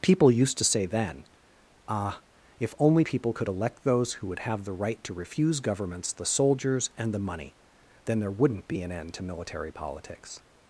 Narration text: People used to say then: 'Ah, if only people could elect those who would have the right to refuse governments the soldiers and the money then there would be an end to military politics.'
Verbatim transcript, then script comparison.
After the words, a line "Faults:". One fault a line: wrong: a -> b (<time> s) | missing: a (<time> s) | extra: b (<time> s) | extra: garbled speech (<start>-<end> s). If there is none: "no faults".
People used to say then: 'Ah, if only people could elect those who would have the right to refuse governments the soldiers and the money then there wouldn't be an end to military politics.'
Faults:
wrong: would -> wouldn't (8.3 s)